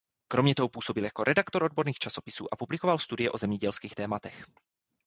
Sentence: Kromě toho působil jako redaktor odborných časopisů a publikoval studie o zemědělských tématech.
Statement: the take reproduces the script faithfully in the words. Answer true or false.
true